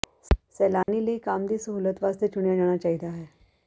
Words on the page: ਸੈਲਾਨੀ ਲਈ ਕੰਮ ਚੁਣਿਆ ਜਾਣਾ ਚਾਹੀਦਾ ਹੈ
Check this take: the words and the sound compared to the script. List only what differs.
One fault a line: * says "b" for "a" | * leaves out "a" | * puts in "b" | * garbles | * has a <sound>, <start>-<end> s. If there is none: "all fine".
* has a dropout, 0.8-0.9 s
* puts in "ਦੀ ਸਹੂਲਤ ਵਾਸਤੇ"